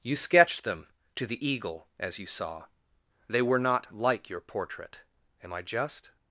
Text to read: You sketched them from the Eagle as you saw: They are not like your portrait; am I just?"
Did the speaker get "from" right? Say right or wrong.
wrong